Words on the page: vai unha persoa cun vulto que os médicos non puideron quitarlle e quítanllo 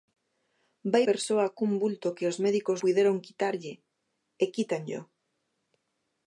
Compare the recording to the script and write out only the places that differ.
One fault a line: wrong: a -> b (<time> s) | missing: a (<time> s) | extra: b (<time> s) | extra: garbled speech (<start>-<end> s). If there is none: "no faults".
missing: unha (1.0 s)
missing: non (2.8 s)